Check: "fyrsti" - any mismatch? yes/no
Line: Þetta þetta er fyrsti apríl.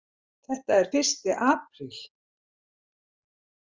no